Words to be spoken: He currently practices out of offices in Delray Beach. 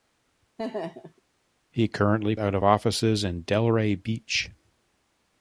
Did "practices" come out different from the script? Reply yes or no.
yes